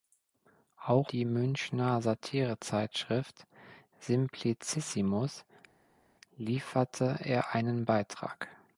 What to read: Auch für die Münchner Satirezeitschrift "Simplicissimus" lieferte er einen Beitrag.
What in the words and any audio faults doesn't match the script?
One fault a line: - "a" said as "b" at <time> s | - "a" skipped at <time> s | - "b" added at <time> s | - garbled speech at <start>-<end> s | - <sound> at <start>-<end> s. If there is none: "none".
- "für" skipped at 1.1 s